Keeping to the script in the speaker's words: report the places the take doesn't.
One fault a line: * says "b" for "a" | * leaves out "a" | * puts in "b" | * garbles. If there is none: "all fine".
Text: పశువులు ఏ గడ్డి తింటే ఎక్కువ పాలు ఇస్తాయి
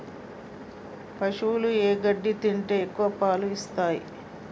all fine